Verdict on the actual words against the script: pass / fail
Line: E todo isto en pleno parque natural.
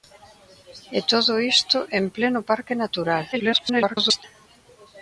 fail